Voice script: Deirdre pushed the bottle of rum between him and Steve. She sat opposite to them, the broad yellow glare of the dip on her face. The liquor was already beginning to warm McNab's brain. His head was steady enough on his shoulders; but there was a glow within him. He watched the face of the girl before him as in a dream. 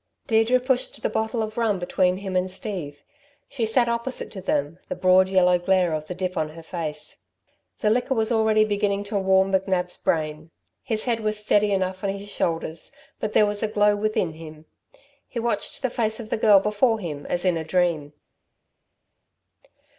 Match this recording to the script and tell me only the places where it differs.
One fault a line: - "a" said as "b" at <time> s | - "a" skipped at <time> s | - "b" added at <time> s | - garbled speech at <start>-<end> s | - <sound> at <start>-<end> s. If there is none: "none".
none